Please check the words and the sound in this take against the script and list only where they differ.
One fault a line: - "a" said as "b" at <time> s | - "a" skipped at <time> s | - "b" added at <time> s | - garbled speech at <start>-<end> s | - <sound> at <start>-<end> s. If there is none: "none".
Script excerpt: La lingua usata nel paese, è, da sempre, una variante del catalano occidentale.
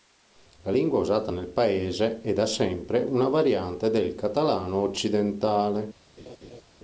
- laugh at 6.2-6.6 s